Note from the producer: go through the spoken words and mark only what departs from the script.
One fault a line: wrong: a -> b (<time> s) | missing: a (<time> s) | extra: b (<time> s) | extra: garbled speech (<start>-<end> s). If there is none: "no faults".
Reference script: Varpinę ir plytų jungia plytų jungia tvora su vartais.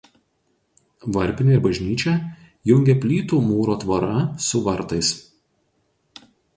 wrong: plytų -> bažnyčią (1.7 s)
wrong: jungia -> mūro (3.5 s)